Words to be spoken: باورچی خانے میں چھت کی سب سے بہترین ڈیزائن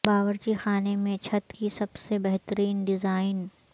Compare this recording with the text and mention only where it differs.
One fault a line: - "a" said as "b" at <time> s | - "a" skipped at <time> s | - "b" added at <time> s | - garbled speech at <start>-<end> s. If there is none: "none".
none